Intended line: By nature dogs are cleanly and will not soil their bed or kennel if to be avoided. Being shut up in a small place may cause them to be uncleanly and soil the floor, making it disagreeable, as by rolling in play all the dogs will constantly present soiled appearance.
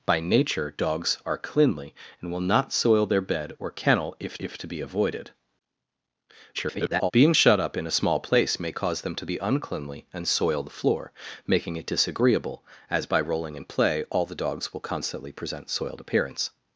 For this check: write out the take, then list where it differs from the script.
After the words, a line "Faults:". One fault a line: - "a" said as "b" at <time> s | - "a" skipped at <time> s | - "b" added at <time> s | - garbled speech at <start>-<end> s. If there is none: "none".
By nature dogs are cleanly and will not soil their bed or kennel if if to be avoided. [garbled] Being shut up in a small place may cause them to be uncleanly and soil the floor, making it disagreeable, as by rolling in play all the dogs will constantly present soiled appearance.
Faults:
- "if" added at 4.4 s
- garbled speech at 6.5-7.1 s